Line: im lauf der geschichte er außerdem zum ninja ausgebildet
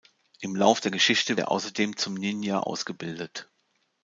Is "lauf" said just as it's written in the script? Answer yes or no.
yes